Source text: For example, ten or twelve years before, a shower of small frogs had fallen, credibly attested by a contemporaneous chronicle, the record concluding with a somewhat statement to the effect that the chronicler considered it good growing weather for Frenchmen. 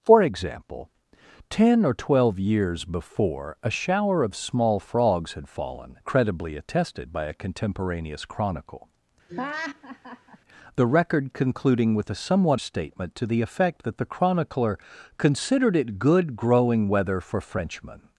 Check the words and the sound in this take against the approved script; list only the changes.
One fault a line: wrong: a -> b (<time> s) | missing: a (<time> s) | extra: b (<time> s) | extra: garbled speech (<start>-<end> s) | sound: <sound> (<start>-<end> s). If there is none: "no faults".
sound: laugh (9.3-10.4 s)